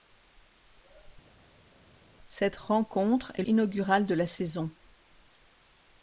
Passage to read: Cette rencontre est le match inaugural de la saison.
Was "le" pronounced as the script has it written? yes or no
no